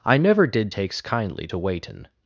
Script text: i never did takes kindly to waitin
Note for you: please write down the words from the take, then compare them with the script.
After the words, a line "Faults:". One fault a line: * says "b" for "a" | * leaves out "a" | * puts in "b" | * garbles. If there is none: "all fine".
i never did takes kindly to waitin
Faults:
all fine